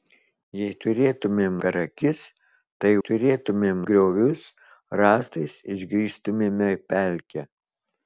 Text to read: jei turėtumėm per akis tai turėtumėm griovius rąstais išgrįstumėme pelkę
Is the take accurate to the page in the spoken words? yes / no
yes